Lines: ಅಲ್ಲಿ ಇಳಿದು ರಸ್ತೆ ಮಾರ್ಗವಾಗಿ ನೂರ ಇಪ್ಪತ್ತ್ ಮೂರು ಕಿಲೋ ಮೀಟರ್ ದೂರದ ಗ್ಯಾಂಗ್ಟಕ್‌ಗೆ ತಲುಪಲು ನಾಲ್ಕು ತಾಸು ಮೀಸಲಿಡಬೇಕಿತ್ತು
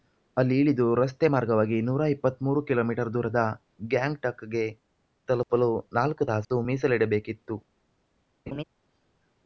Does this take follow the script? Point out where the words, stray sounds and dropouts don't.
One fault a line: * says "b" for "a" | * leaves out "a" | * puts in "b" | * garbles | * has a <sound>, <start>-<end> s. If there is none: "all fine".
* has a laugh, 8.5-8.6 s